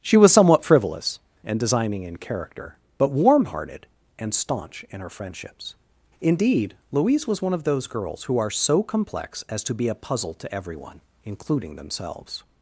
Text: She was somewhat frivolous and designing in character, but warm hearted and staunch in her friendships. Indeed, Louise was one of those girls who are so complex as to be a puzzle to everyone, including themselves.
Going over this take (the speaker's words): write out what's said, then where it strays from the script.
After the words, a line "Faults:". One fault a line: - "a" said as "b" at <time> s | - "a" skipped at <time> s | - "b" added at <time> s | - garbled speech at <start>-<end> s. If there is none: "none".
She was somewhat frivolous and designing in character, but warm hearted and staunch in her friendships. Indeed, Louise was one of those girls who are so complex as to be a puzzle to everyone, including themselves.
Faults:
none